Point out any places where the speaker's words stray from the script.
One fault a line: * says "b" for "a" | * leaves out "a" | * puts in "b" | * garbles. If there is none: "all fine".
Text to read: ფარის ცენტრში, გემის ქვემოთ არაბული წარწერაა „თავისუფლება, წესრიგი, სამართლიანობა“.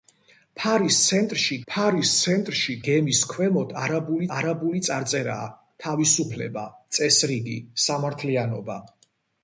* puts in "ფარის ცენტრში"
* puts in "არაბული"